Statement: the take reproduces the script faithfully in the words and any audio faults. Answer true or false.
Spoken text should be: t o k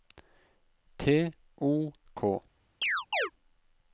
false